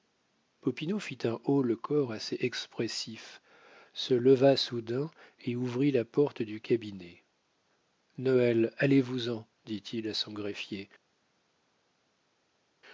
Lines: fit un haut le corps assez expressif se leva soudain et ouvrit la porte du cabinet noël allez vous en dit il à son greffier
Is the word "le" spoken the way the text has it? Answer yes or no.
yes